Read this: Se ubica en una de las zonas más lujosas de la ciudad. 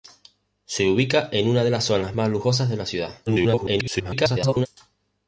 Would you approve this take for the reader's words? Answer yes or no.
no